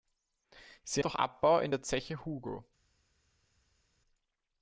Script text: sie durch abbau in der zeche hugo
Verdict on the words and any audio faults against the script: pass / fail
pass